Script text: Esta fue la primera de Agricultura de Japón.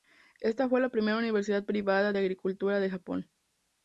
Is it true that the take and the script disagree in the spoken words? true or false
true